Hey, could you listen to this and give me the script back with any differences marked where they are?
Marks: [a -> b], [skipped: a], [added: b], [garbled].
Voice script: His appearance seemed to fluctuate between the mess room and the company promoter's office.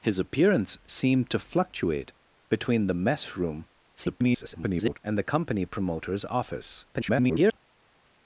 His appearance seemed to fluctuate between the mess room [garbled] and the company promoter's office. [garbled]